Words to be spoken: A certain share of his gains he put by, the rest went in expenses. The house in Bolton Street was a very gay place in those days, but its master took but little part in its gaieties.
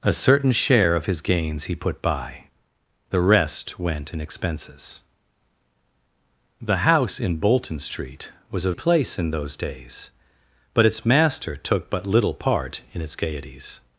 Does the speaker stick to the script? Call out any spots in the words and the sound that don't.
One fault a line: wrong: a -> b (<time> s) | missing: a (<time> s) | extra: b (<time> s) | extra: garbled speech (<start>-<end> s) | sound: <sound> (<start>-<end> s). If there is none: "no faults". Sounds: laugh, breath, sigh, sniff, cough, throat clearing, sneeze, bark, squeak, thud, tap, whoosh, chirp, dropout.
missing: very gay (8.7 s)